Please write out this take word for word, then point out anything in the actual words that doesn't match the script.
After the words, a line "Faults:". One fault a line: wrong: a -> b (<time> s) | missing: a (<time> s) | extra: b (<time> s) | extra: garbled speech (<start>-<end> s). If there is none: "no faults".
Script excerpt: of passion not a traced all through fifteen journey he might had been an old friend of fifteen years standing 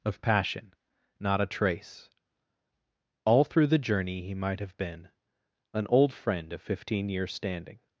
of passion not a trace all through the journey he might have been an old friend of fifteen years standing
Faults:
wrong: traced -> trace (1.4 s)
wrong: fifteen -> the (3.7 s)
wrong: had -> have (4.6 s)